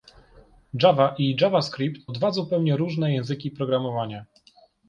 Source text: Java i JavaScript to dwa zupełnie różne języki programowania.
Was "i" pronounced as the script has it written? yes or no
yes